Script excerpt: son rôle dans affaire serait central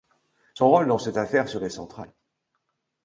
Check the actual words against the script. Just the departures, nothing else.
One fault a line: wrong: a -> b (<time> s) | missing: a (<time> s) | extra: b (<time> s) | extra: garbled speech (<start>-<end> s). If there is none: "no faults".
extra: cette (1.0 s)